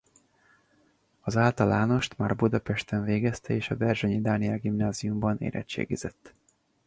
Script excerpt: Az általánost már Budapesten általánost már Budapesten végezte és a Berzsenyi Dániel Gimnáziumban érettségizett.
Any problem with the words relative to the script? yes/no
yes